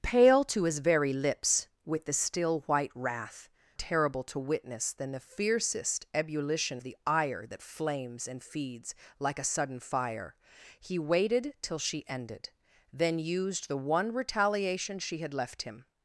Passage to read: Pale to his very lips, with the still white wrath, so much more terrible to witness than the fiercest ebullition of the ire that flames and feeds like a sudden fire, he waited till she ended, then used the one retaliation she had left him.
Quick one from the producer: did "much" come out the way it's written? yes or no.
no